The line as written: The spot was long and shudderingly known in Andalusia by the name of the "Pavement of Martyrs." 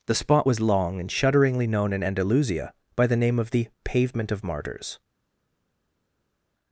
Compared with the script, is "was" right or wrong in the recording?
right